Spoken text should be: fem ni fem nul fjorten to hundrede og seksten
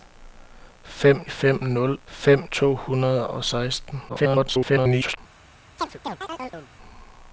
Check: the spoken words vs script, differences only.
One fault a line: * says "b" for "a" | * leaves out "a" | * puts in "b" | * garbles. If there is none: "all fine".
* leaves out "ni"
* says "fem" for "fjorten"
* garbles